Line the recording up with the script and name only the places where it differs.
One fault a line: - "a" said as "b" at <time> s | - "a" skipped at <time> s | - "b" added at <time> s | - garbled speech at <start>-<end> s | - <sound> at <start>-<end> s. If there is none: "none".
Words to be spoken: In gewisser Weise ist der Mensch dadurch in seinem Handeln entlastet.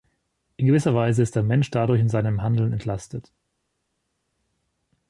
none